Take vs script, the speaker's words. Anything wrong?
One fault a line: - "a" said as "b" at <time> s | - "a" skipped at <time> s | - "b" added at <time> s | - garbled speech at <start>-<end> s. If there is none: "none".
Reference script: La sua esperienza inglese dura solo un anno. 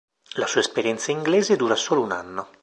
none